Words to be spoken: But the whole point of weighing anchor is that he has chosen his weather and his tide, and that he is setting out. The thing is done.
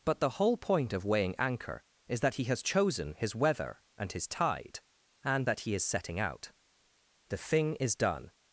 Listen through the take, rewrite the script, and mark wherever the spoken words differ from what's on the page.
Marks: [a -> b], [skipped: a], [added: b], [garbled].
But the whole point of weighing anchor is that he has chosen his weather and his tide, and that he is setting out. The thing is done.